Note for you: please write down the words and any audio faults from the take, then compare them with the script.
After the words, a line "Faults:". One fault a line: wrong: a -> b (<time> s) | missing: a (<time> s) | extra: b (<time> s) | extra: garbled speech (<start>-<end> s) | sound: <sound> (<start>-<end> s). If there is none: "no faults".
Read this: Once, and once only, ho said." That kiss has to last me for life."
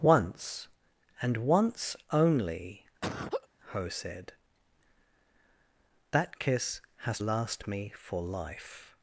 Once, and once only, ho said." That kiss has last me for life."
Faults:
sound: laugh (3.0-3.5 s)
missing: to (7.2 s)